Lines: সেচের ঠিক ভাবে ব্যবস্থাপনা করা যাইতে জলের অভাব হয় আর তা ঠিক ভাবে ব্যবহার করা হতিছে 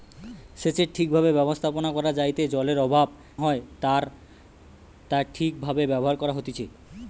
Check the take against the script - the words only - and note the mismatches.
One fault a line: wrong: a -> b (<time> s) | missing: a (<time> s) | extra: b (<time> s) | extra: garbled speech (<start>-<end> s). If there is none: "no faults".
no faults